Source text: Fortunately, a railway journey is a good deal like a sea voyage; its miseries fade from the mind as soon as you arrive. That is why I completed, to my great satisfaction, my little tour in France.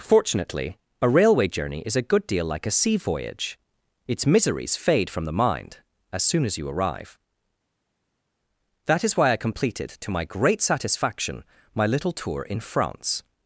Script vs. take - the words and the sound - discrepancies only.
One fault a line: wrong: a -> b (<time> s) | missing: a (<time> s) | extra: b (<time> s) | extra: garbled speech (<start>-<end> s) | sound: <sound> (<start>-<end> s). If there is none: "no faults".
no faults